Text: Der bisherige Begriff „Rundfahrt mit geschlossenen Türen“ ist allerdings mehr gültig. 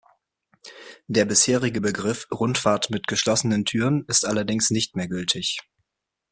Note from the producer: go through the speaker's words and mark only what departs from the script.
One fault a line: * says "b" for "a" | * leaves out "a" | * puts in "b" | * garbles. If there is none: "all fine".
* puts in "nicht"